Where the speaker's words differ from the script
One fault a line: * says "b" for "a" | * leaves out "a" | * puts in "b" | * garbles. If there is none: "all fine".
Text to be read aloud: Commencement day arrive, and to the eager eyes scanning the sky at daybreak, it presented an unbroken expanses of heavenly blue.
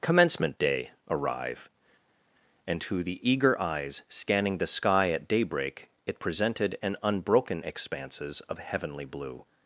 all fine